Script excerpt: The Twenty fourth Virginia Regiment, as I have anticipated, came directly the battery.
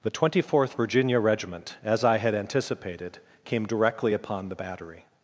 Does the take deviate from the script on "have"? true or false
true